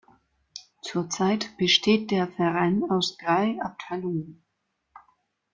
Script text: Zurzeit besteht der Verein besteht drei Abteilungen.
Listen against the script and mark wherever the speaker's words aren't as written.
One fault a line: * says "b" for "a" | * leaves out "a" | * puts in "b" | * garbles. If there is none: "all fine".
* says "aus" for "besteht"